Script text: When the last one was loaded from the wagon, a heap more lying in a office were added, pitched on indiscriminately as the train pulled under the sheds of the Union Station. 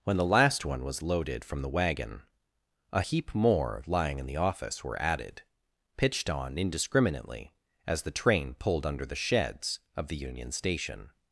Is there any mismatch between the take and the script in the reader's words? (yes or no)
yes